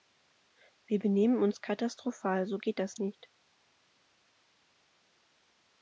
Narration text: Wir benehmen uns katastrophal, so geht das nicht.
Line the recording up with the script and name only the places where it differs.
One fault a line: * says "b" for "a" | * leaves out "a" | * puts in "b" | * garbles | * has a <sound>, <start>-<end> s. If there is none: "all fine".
all fine